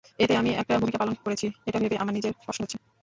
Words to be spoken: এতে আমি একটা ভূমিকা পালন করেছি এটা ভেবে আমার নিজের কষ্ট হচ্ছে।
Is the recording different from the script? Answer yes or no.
no